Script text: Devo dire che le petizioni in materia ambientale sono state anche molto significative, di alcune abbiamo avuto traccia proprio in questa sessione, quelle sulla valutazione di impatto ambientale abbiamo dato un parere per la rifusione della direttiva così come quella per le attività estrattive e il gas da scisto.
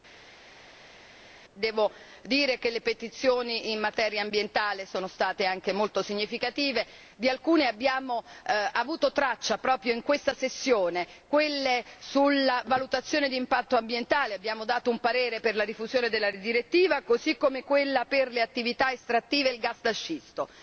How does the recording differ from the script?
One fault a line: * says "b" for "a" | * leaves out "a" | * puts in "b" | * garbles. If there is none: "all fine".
all fine